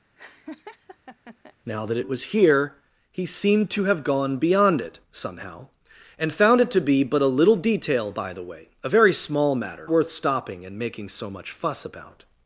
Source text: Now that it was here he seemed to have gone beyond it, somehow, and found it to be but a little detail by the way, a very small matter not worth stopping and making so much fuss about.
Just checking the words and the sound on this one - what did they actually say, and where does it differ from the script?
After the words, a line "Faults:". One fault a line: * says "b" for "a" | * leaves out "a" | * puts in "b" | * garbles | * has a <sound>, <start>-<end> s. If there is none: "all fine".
Now that it was here he seemed to have gone beyond it, somehow, and found it to be but a little detail by the way, a very small matter worth stopping and making so much fuss about.
Faults:
* has a laugh, 0.2-1.6 s
* leaves out "not"